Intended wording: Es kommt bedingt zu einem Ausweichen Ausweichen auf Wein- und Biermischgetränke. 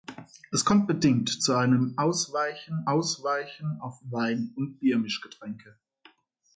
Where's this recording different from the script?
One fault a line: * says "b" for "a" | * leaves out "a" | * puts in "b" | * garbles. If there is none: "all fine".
all fine